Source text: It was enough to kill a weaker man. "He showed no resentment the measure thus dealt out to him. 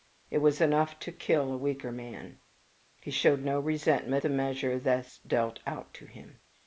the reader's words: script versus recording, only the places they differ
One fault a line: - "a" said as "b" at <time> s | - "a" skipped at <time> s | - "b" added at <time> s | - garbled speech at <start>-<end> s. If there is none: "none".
none